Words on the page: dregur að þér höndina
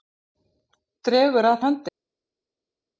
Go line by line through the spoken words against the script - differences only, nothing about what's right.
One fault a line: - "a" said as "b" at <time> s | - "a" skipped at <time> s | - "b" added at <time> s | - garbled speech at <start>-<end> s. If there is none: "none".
- "þér" skipped at 1.6 s